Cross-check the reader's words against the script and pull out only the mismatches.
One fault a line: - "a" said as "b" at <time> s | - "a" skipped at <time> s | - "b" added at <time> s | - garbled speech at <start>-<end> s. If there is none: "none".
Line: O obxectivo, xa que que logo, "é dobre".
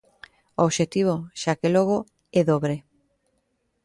- "que" skipped at 1.7 s